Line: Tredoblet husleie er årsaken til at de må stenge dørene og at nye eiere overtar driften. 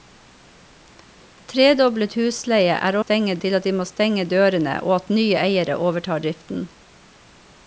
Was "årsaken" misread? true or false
true